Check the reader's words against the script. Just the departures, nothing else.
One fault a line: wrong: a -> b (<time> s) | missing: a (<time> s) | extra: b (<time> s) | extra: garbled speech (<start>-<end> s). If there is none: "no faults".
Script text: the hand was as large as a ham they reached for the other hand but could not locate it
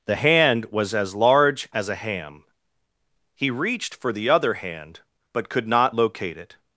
wrong: they -> he (3.4 s)